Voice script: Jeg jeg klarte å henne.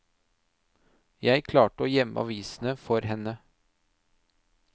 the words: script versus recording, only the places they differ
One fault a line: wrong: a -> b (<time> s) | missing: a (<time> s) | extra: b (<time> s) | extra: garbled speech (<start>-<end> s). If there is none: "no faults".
missing: jeg (1.4 s)
extra: gjemme avisene for (1.9 s)